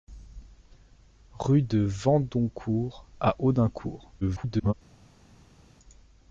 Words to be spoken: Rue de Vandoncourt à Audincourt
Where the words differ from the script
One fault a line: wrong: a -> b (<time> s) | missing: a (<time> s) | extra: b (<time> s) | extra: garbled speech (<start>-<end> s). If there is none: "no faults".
extra: garbled speech (4.2-4.7 s)